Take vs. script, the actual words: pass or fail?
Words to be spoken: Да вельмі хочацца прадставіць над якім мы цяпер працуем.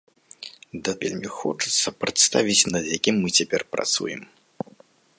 pass